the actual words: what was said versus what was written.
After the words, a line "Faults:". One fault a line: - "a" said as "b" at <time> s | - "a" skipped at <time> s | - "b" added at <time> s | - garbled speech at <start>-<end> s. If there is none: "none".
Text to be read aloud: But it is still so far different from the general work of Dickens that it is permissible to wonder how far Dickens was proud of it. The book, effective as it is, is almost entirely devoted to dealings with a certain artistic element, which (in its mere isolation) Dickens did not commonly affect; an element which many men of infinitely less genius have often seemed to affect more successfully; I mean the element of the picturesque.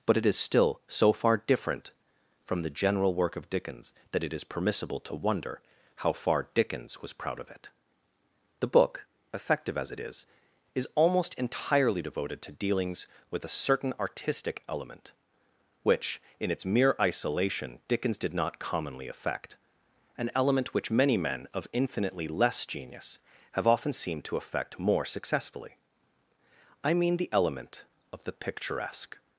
But it is still so far different from the general work of Dickens that it is permissible to wonder how far Dickens was proud of it. The book, effective as it is, is almost entirely devoted to dealings with a certain artistic element, which (in its mere isolation) Dickens did not commonly affect; an element which many men of infinitely less genius have often seemed to affect more successfully; I mean the element of the picturesque.
Faults:
none